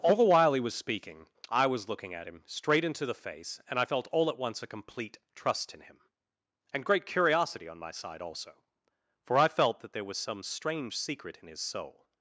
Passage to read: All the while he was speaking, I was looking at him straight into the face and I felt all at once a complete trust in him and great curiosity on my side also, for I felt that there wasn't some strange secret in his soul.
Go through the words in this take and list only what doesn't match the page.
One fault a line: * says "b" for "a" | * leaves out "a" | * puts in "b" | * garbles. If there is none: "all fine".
* says "was" for "wasn't"